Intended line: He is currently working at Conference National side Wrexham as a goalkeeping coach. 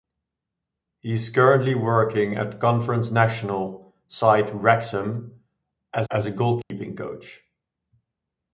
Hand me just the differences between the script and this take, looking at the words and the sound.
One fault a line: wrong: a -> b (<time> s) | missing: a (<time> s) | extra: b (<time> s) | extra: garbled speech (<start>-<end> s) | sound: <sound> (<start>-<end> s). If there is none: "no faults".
extra: as (6.1 s)
sound: dropout (6.6-6.7 s)